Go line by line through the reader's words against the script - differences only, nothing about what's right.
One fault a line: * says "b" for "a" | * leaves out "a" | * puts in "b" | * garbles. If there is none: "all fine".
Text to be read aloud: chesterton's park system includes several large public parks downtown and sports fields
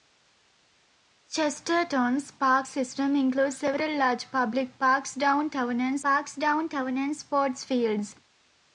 * puts in "parks downtown and"